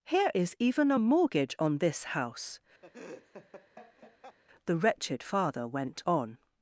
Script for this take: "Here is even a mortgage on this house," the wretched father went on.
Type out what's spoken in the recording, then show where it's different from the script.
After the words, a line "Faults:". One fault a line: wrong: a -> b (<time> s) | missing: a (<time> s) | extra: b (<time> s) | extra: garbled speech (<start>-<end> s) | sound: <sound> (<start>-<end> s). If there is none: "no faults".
"Here is even a mortgage on this house," the wretched father went on.
Faults:
sound: laugh (2.8-4.4 s)